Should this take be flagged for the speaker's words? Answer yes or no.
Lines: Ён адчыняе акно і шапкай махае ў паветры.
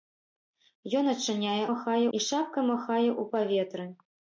yes